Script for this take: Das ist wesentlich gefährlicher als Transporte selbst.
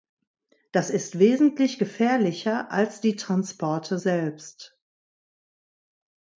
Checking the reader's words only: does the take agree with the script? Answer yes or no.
no